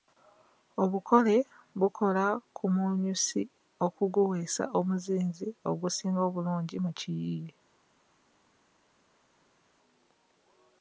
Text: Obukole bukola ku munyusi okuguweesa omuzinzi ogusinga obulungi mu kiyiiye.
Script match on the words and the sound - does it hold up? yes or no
yes